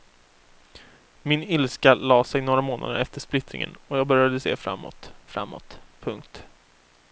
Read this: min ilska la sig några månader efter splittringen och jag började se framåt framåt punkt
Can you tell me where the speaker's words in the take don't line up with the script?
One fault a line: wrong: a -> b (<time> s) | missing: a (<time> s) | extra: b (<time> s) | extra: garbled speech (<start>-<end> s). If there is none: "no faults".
no faults